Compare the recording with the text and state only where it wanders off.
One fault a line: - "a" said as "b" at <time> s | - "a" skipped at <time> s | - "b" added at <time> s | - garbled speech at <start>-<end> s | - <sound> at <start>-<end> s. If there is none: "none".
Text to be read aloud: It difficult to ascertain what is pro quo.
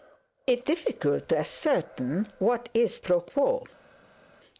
none